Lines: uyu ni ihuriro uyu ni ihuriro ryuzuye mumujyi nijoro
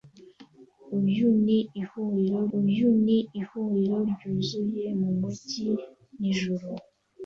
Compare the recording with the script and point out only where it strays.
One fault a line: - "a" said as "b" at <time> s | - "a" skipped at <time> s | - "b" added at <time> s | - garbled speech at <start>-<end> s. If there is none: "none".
none